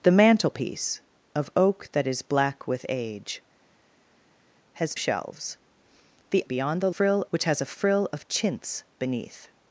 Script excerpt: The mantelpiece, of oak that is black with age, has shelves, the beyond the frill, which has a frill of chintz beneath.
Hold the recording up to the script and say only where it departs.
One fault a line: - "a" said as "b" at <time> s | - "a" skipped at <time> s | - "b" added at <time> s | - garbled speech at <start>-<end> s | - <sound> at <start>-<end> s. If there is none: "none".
none